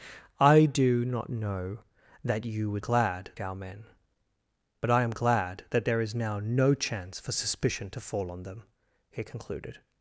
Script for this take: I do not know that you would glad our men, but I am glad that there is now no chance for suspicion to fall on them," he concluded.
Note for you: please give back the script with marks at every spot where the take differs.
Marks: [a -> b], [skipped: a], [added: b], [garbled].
I do not know that you would glad our men, but I am glad that there is now no chance for suspicion to fall on them," he concluded.